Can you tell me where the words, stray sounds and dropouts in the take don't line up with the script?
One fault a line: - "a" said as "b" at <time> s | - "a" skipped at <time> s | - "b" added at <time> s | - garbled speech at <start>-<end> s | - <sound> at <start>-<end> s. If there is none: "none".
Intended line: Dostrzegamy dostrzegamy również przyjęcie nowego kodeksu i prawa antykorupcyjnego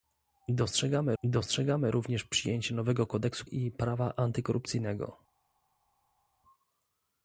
none